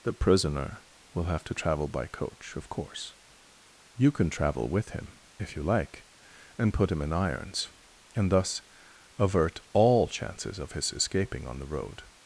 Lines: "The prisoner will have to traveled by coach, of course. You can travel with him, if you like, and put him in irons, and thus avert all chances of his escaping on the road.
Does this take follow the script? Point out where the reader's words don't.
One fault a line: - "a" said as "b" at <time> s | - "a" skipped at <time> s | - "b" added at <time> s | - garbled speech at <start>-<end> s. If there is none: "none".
- "traveled" said as "travel" at 1.5 s